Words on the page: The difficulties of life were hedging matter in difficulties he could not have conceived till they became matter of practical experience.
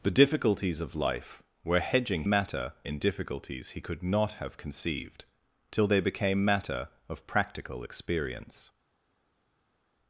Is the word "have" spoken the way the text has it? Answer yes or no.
yes